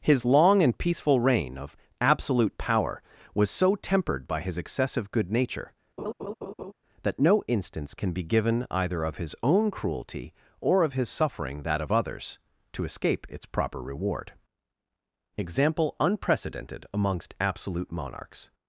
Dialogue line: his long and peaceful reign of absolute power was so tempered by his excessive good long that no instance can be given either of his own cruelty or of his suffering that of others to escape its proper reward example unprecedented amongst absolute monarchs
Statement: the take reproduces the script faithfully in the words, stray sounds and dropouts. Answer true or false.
false